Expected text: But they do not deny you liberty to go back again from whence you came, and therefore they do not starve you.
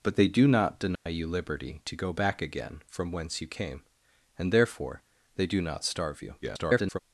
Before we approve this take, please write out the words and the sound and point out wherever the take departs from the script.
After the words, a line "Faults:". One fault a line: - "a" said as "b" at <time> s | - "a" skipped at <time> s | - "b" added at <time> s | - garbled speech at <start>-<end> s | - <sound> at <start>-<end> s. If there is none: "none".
But they do not deny you liberty to go back again from whence you came, and therefore they do not starve you. [garbled]
Faults:
- dropout at 1.0-1.1 s
- garbled speech at 6.4-7.0 s